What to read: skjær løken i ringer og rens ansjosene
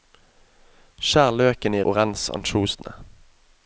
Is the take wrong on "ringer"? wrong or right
wrong